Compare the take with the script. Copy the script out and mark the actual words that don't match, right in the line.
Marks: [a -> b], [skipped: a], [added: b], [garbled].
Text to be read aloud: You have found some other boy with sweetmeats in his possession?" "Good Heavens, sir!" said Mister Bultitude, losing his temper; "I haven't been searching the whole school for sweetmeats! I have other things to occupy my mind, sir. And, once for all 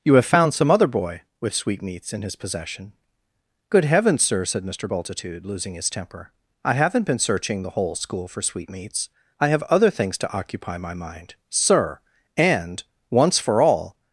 You have found some other boy with sweetmeats in his possession?" "Good Heavens, sir!" said Mister Bultitude, losing his temper; "I haven't been searching the whole school for sweetmeats! I have other things to occupy my mind, sir. And, once for all